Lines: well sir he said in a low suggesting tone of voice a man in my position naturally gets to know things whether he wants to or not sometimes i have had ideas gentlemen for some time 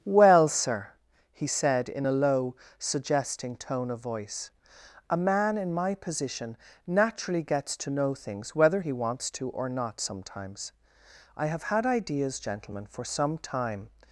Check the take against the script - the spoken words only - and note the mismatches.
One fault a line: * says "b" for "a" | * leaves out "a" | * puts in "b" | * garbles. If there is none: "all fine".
all fine